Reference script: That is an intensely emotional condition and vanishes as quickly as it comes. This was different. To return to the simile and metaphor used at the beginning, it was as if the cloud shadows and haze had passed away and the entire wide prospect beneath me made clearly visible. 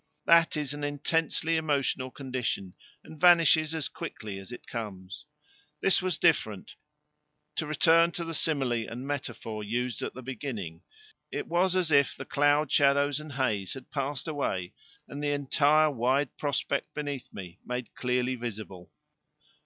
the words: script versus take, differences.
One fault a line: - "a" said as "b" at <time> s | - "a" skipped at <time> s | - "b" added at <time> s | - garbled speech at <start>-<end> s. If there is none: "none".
none